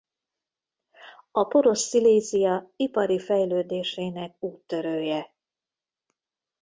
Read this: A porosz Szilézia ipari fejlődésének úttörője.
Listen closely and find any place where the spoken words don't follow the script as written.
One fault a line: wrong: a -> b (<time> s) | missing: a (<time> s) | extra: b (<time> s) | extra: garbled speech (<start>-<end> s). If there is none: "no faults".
no faults